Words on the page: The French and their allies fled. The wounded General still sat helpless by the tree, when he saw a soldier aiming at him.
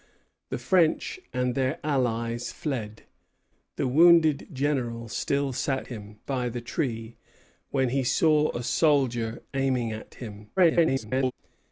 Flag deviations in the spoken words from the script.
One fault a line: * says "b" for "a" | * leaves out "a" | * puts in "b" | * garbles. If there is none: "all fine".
* says "him" for "helpless"
* garbles